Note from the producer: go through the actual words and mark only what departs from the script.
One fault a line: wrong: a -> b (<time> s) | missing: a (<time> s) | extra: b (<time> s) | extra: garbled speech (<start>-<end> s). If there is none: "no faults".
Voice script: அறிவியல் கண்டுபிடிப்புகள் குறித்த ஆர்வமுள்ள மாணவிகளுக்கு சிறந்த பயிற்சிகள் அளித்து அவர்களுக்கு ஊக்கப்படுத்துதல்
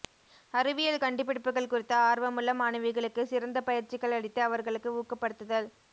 no faults